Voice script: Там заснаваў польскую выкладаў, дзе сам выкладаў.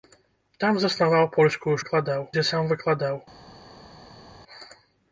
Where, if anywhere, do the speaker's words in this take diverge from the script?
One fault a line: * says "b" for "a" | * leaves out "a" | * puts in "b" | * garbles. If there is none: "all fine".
all fine